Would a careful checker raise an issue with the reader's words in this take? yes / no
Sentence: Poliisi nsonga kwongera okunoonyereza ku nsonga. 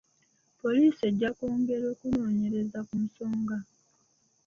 yes